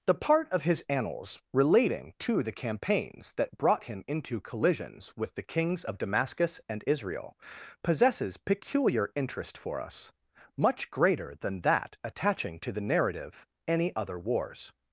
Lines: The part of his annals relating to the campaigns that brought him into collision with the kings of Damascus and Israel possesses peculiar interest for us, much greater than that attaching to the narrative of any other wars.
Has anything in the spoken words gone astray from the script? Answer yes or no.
yes